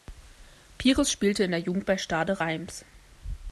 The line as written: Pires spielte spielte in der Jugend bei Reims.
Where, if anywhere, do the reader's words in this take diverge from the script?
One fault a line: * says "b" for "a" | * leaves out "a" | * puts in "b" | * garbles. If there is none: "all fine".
* leaves out "spielte"
* puts in "Stade"